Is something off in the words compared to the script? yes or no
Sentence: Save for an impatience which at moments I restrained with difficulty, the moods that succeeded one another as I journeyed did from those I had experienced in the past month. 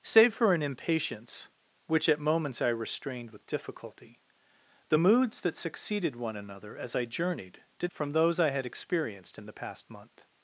no